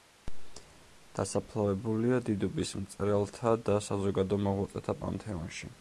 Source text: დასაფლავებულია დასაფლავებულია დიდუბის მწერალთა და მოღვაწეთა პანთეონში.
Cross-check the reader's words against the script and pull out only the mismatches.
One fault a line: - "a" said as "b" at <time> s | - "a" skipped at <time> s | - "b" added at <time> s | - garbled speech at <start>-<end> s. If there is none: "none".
- "დასაფლავებულია" skipped at 2.2 s
- "საზოგადო" added at 3.9 s